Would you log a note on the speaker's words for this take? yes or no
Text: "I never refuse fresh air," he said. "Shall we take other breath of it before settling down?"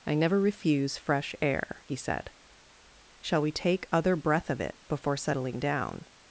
no